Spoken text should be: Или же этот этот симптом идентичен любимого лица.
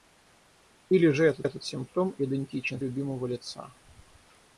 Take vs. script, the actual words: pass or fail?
pass